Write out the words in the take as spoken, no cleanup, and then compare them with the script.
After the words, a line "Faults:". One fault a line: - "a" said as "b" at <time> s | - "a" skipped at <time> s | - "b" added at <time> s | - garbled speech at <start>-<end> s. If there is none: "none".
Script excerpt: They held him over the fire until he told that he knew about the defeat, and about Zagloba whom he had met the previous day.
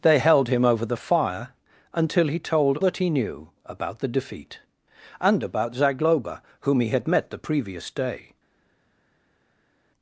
They held him over the fire until he told that he knew about the defeat, and about Zagloba whom he had met the previous day.
Faults:
none